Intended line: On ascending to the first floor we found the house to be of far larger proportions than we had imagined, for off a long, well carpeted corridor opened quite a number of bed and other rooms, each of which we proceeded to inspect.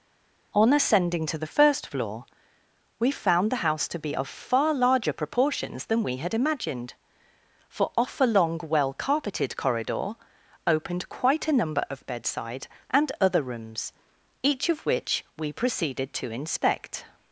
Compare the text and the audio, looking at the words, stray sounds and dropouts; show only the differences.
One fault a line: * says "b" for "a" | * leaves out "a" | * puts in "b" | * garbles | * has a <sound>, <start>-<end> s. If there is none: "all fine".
* says "bedside" for "bed"